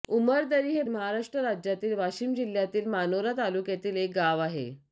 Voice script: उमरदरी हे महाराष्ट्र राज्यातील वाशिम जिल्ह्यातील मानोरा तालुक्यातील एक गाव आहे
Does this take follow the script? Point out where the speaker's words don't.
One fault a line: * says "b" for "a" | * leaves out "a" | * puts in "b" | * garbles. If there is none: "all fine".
all fine